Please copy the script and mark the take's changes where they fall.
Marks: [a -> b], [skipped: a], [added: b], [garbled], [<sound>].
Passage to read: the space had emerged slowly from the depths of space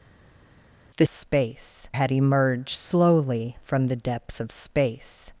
the space had emerged slowly from the depths of space